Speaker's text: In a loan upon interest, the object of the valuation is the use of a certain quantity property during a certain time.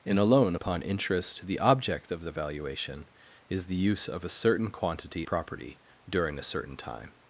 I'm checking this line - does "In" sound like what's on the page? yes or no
yes